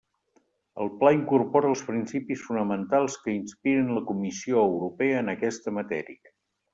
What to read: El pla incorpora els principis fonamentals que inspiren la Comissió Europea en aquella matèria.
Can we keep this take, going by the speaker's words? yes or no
no